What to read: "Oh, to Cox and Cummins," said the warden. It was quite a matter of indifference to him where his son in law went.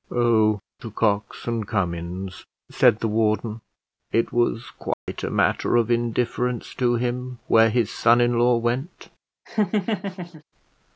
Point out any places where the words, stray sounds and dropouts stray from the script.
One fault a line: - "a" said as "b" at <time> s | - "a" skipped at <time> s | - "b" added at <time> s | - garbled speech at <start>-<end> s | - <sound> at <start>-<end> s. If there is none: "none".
- dropout at 4.9-5.1 s
- laugh at 9.4-10.4 s